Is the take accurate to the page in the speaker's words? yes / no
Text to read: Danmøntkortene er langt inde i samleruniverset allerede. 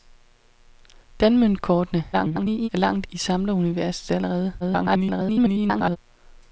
no